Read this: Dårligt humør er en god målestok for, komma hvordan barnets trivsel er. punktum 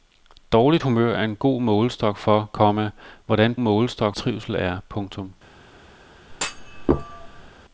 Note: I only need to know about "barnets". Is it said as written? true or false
false